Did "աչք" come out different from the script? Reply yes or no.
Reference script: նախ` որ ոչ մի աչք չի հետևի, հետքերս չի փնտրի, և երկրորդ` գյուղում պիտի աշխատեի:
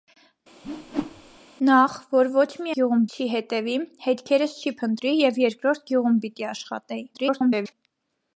yes